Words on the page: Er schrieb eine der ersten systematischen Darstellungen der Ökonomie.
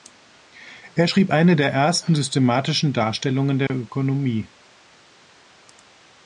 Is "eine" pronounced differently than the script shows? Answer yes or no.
no